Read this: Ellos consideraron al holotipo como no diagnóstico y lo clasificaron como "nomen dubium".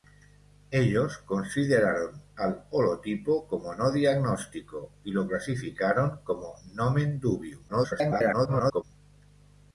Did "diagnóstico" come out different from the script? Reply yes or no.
no